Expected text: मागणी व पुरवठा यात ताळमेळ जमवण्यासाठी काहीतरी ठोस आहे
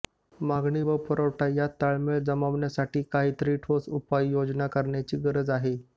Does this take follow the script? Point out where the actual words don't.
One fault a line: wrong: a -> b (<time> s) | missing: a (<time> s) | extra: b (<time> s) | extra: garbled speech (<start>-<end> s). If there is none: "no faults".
extra: उपाययोजना करण्याची गरज (3.9 s)